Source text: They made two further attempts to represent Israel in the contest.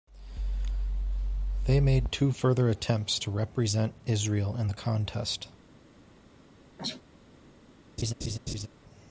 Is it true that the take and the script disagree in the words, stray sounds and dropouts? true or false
true